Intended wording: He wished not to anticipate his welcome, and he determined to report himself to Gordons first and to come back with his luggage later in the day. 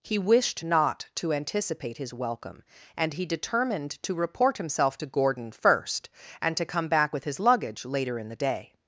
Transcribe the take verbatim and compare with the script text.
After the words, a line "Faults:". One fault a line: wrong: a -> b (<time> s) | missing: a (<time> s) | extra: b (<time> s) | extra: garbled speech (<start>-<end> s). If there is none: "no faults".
He wished not to anticipate his welcome, and he determined to report himself to Gordon first and to come back with his luggage later in the day.
Faults:
wrong: Gordons -> Gordon (5.1 s)